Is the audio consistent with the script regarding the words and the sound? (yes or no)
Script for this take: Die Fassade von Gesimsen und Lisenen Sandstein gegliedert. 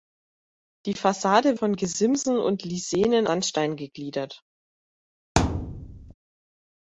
no